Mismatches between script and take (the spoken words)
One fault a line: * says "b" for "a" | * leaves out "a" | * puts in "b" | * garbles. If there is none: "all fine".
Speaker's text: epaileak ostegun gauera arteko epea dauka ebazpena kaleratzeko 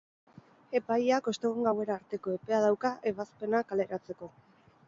all fine